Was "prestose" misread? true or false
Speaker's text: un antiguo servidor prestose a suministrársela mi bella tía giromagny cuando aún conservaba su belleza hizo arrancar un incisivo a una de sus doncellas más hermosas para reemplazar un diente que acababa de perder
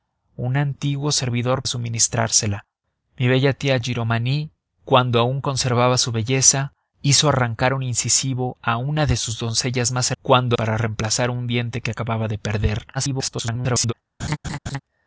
true